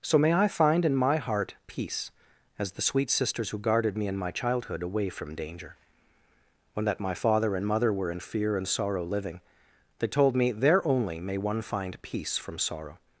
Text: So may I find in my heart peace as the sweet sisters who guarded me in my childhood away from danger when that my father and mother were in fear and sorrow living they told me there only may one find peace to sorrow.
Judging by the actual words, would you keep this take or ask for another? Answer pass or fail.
fail